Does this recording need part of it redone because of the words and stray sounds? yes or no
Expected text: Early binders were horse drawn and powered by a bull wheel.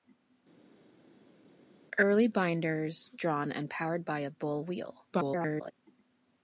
yes